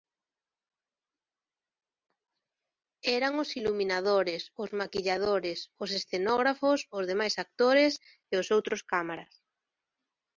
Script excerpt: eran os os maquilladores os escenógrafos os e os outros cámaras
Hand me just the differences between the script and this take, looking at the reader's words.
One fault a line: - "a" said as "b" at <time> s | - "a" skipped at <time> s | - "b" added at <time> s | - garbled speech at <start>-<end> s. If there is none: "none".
- "iluminadores" added at 3.6 s
- "demais actores" added at 7.1 s